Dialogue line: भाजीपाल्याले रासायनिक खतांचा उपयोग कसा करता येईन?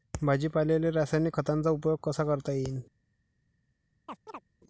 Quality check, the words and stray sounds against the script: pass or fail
fail